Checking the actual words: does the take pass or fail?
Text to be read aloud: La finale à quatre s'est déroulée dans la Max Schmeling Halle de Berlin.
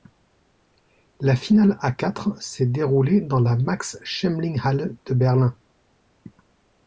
pass